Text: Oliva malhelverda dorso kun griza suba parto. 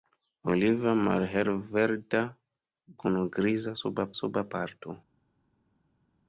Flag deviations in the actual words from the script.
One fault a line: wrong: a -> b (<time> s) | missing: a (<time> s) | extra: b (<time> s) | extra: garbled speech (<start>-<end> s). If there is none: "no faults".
missing: dorso (2.2 s)
extra: suba (4.2 s)